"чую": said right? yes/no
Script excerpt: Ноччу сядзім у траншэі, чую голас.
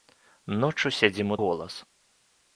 no